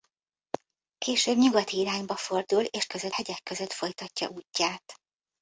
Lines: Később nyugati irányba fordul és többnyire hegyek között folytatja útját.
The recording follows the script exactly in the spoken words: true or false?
false